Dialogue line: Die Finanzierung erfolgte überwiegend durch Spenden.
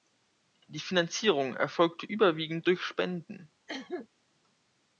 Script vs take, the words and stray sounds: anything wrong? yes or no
yes